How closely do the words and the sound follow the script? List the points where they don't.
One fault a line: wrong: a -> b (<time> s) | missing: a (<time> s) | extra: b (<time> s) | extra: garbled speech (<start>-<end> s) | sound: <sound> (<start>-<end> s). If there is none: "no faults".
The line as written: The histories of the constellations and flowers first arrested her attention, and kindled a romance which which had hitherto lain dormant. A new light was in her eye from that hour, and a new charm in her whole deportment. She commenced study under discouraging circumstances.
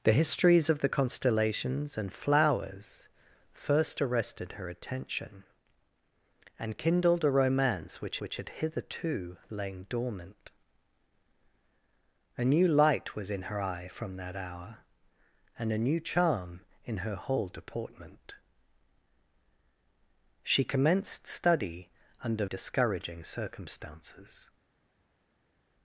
no faults